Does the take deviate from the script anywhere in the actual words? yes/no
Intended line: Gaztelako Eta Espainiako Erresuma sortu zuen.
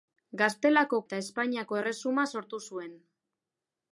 no